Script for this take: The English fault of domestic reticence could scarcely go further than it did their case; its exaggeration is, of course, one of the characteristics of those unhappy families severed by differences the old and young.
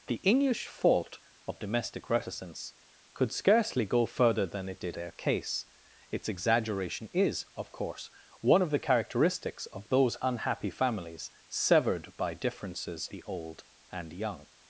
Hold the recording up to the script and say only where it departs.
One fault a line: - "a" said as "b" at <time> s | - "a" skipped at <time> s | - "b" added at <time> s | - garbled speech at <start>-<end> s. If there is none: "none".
none